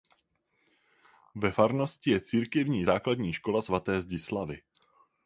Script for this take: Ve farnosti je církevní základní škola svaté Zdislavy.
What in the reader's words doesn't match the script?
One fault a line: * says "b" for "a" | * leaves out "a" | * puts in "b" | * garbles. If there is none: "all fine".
all fine